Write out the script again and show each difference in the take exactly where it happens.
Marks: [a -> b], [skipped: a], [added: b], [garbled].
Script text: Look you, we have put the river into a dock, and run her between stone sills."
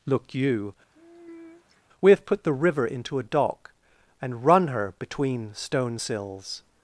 Look you, we have put the river into a dock, and run her between stone sills."